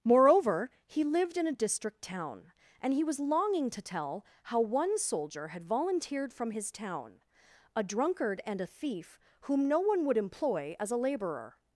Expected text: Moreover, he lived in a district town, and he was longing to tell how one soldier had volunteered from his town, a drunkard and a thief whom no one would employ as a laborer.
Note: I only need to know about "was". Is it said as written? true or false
true